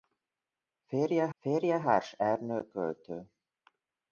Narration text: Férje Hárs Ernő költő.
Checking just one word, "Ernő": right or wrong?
right